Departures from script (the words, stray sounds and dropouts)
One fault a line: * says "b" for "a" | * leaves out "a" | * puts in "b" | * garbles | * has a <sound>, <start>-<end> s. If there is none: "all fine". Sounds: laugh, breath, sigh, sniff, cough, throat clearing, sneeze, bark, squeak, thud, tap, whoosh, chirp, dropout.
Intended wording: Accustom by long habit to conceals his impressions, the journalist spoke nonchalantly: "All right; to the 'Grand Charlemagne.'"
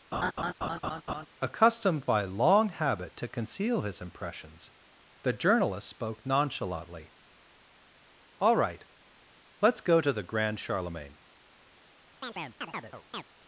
* has a laugh, 0.1-1.3 s
* says "Accustomed" for "Accustom"
* says "conceal" for "conceals"
* puts in "let's go"
* has a chirp, 12.2-13.2 s